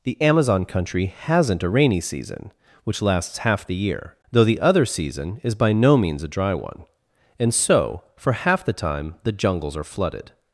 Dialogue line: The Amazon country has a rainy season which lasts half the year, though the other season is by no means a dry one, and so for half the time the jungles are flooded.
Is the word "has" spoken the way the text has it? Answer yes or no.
no